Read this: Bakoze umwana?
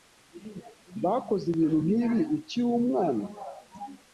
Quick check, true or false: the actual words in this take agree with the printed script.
false